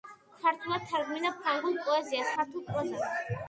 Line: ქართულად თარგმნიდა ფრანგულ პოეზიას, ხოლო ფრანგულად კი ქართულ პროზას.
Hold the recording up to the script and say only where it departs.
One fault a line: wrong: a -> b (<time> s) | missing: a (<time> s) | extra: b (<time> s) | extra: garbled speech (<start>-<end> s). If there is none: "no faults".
missing: ხოლო ფრანგულად კი (2.4 s)